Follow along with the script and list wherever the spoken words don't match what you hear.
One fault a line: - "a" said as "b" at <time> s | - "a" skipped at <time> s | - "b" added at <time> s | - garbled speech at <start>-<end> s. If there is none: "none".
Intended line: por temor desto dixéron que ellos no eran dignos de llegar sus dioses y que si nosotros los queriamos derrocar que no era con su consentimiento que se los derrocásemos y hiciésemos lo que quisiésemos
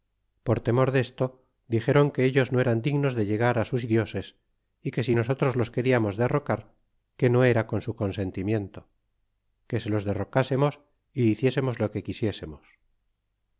none